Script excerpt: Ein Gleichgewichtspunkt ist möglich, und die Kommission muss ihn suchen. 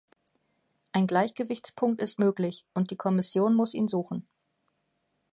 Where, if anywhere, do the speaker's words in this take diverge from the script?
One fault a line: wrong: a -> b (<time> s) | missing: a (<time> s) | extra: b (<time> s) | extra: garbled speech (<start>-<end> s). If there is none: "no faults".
no faults